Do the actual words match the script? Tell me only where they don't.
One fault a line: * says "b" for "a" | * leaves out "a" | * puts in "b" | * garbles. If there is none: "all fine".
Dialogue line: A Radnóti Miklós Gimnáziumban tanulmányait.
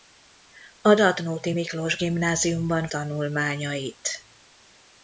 all fine